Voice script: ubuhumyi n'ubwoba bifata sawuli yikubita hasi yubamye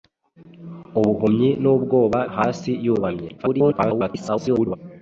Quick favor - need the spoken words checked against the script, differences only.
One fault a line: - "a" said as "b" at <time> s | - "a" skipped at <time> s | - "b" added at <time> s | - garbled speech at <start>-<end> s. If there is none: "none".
- "bifata sawuli yikubita" skipped at 2.2 s
- garbled speech at 3.4-4.8 s